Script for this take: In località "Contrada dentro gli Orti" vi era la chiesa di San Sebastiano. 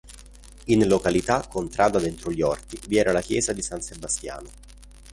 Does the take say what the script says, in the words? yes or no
yes